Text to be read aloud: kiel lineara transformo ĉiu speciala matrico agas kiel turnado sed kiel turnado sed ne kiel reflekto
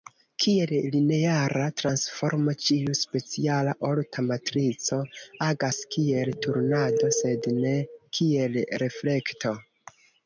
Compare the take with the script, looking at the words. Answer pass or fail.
fail